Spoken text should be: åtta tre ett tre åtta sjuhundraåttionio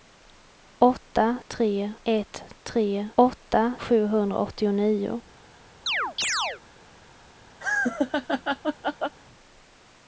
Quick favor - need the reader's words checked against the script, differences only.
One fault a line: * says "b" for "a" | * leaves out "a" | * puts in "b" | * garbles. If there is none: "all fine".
all fine